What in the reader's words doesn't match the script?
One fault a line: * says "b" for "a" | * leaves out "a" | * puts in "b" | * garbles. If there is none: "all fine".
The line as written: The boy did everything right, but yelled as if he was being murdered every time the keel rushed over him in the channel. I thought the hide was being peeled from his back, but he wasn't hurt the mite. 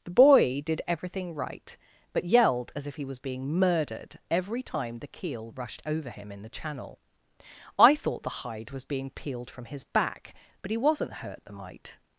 all fine